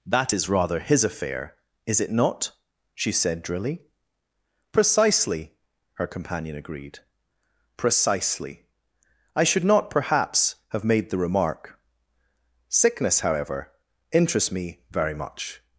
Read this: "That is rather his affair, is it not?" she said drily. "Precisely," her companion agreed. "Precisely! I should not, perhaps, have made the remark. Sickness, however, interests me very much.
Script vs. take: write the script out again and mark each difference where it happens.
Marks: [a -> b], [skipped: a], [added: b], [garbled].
"That is rather his affair, is it not?" she said drily. "Precisely," her companion agreed. "Precisely! I should not, perhaps, have made the remark. Sickness, however, interests me very much.